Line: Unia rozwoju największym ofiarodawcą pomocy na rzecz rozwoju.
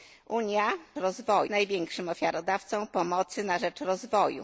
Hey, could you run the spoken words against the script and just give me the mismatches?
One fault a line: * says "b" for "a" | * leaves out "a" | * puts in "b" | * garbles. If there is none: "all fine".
all fine